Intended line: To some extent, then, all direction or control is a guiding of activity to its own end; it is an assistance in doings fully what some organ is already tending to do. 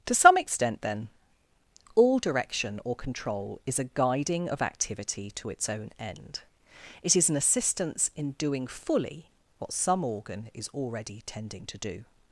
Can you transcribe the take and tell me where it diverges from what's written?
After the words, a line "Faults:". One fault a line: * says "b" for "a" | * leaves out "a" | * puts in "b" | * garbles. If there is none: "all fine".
To some extent, then, all direction or control is a guiding of activity to its own end; it is an assistance in doing fully what some organ is already tending to do.
Faults:
* says "doing" for "doings"